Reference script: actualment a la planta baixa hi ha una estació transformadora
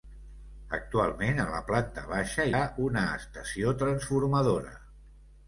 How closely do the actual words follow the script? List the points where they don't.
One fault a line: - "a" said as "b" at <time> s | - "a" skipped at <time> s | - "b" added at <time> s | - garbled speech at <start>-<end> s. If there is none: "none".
- "hi" skipped at 2.5 s